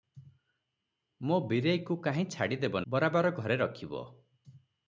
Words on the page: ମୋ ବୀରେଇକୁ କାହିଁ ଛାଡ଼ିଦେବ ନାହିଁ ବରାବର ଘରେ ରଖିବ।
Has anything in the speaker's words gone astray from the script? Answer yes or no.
yes